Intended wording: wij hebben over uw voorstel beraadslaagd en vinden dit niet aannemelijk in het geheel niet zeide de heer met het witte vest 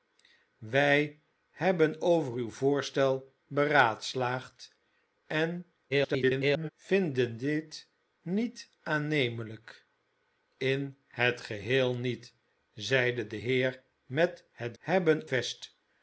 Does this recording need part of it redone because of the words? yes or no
yes